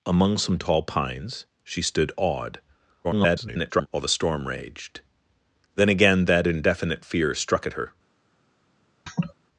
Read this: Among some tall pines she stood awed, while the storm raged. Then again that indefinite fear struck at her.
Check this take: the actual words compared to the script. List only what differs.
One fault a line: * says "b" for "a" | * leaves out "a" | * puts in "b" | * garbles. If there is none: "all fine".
* garbles